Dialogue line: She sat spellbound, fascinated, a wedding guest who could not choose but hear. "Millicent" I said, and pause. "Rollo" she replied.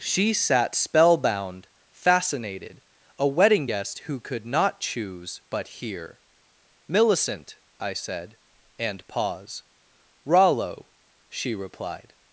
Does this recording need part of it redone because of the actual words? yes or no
no